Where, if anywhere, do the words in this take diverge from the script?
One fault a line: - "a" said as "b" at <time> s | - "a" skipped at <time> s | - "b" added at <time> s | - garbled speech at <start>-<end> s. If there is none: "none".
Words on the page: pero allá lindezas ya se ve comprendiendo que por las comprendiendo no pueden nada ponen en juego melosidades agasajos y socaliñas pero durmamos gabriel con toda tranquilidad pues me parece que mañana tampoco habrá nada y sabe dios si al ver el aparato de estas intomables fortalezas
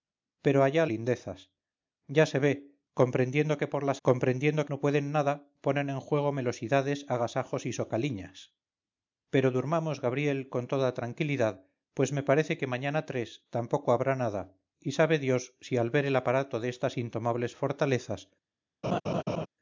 none